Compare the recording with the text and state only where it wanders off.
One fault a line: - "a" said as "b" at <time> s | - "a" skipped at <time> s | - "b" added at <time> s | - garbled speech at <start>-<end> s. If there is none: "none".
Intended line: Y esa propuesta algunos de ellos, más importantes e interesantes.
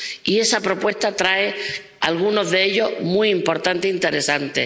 - "trae" added at 1.1 s
- "más" said as "muy" at 3.0 s